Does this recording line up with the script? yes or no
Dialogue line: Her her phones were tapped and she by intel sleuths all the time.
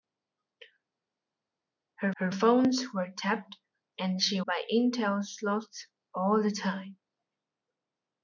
yes